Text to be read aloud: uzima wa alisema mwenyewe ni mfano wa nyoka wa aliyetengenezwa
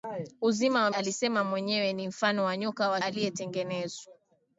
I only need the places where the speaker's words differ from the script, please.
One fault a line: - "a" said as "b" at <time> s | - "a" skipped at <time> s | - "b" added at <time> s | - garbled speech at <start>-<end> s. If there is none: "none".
none